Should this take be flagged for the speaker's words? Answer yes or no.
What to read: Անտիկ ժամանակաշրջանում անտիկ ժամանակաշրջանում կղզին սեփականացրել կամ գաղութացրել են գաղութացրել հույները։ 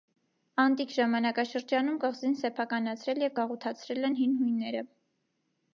yes